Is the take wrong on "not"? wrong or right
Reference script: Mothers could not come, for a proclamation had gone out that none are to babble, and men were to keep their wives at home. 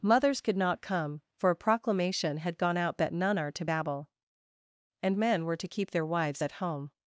right